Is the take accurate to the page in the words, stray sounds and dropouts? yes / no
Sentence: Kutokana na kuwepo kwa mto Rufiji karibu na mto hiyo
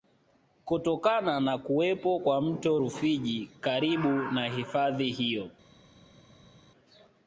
no